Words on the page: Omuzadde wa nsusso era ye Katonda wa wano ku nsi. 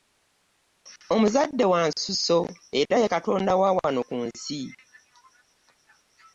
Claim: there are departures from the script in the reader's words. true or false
false